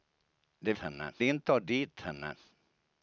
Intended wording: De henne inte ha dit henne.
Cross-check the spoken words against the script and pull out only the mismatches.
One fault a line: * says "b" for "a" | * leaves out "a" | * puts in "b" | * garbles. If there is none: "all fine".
all fine